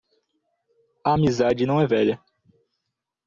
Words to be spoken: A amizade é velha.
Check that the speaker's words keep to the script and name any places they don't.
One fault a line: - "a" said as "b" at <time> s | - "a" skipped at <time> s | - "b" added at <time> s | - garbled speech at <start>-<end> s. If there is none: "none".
- "não" added at 1.6 s